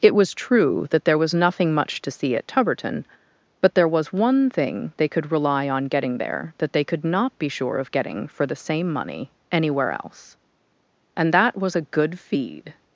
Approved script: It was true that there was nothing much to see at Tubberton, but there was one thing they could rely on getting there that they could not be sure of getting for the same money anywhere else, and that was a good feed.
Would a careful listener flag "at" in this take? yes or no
no